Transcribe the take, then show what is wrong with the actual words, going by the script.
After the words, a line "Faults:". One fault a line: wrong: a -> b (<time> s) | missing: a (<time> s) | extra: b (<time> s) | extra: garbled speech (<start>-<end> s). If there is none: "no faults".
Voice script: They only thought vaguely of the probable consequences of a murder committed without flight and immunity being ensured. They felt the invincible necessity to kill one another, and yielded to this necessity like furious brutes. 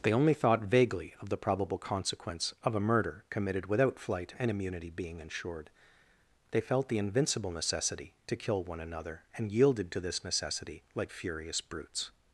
They only thought vaguely of the probable consequence of a murder committed without flight and immunity being ensured. They felt the invincible necessity to kill one another, and yielded to this necessity like furious brutes.
Faults:
wrong: consequences -> consequence (1.8 s)